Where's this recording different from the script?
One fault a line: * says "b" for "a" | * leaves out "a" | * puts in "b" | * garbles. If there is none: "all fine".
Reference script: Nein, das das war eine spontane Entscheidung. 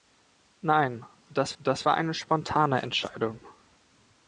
all fine